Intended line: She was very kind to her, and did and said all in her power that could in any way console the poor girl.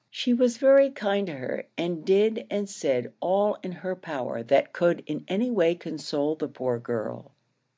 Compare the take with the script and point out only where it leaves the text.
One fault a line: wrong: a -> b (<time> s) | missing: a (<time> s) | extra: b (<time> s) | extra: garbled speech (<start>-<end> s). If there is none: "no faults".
no faults